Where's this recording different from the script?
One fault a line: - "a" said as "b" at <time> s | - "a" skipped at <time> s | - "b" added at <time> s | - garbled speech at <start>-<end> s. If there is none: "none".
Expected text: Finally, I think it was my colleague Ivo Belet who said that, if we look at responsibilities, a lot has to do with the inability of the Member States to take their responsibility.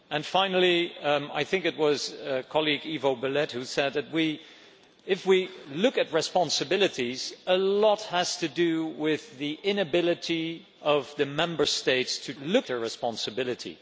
- "take" said as "look" at 12.4 s